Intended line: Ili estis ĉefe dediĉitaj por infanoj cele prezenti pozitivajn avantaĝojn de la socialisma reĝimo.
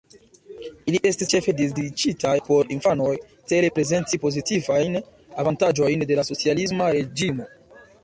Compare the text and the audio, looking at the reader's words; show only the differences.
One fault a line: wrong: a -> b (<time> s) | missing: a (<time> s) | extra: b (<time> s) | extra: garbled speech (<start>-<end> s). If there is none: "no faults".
no faults